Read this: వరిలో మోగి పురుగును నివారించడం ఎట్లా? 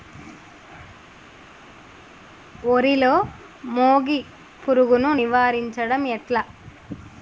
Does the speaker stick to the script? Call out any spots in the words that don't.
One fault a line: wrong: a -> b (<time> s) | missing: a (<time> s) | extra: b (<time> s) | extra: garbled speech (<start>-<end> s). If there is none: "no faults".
no faults